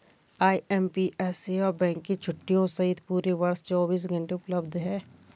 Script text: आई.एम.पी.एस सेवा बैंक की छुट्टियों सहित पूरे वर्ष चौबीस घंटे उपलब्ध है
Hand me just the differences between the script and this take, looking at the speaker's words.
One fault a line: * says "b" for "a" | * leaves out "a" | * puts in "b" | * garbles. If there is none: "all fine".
all fine